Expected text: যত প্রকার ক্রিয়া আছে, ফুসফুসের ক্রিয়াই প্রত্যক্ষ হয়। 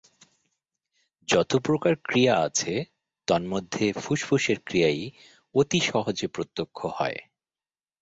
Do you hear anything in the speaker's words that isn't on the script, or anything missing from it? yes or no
yes